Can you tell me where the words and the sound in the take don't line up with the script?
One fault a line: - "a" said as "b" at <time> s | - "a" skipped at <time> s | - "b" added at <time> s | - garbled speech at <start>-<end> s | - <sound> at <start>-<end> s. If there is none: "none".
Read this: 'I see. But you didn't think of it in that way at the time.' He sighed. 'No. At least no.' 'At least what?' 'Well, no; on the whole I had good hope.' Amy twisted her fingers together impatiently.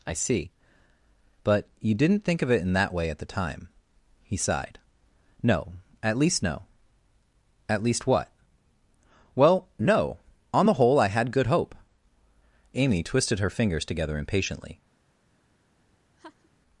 - laugh at 16.2-16.5 s